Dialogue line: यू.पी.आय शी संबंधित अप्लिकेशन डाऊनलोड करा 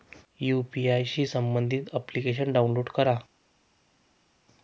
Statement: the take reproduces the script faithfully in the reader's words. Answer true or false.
true